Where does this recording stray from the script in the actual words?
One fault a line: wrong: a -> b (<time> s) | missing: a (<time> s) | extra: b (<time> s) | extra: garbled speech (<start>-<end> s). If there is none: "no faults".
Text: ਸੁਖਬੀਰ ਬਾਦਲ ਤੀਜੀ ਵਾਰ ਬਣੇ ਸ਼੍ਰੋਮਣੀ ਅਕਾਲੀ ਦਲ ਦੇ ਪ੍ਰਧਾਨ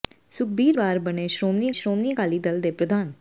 missing: ਬਾਦਲ ਤੀਜੀ (0.8 s)
extra: ਸ਼੍ਰੋਮਣੀ (1.7 s)